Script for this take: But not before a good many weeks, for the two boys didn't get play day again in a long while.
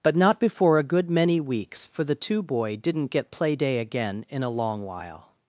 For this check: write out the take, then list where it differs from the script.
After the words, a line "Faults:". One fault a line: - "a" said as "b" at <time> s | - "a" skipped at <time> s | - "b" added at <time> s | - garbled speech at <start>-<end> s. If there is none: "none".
But not before a good many weeks, for the two boy didn't get play day again in a long while.
Faults:
- "boys" said as "boy" at 2.4 s